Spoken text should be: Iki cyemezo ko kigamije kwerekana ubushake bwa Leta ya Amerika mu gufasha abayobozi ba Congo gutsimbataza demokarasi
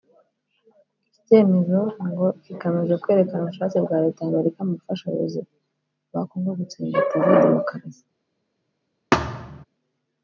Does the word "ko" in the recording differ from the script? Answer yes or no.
yes